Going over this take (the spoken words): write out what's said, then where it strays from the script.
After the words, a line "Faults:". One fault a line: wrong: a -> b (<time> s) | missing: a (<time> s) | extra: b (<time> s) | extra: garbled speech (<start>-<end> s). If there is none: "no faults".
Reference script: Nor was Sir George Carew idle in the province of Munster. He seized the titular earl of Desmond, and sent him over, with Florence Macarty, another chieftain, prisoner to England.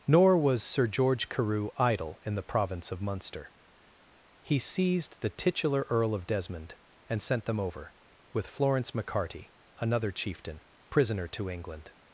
Nor was Sir George Carew idle in the province of Munster. He seized the titular earl of Desmond, and sent them over, with Florence Macarty, another chieftain, prisoner to England.
Faults:
wrong: him -> them (7.5 s)